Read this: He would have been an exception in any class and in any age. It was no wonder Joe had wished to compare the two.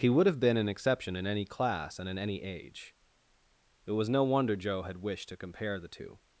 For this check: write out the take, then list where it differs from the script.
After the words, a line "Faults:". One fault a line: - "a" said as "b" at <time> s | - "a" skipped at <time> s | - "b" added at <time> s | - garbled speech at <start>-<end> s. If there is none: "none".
He would have been an exception in any class and in any age. It was no wonder Joe had wished to compare the two.
Faults:
none